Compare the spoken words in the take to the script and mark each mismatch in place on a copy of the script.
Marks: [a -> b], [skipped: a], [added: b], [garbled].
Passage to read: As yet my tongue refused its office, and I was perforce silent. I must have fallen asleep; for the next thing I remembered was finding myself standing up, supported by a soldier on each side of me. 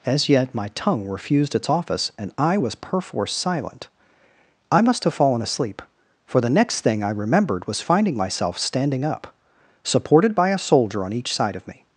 As yet my tongue refused its office, and I was perforce silent. I must have fallen asleep; for the next thing I remembered was finding myself standing up, supported by a soldier on each side of me.